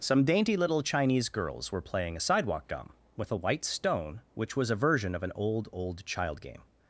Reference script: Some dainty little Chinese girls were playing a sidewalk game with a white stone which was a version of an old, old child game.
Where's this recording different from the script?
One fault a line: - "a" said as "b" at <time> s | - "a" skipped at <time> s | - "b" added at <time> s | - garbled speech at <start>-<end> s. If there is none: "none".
- "game" said as "gum" at 2.7 s